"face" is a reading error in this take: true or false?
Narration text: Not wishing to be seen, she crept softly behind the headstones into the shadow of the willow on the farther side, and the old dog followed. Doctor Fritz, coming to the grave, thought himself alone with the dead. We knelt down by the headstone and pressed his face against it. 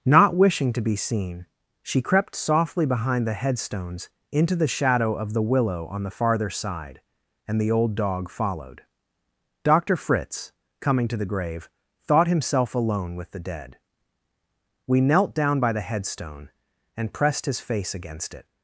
false